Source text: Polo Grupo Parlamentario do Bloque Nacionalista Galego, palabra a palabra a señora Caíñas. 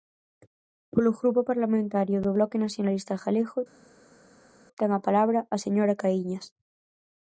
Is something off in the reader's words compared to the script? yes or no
yes